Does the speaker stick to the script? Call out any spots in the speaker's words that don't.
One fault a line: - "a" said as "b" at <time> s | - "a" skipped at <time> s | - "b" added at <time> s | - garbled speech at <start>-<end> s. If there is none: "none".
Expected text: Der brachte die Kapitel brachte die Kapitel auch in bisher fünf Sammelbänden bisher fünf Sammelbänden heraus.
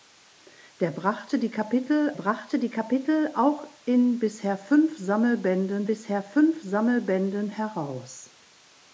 none